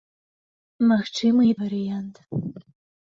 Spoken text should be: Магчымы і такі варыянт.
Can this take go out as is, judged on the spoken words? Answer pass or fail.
fail